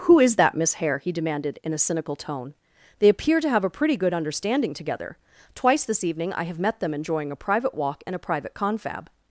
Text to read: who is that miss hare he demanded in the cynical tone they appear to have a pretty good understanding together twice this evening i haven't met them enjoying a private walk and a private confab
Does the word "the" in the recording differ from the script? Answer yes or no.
yes